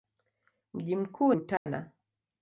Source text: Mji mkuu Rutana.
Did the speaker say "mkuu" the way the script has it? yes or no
yes